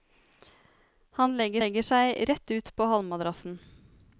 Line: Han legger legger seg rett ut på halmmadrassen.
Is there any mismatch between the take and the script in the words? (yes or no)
no